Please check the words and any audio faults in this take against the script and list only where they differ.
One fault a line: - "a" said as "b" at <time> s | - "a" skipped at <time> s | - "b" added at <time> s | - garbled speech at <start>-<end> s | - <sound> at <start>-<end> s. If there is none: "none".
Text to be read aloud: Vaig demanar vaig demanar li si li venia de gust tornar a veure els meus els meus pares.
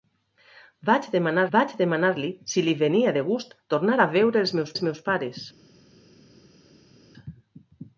none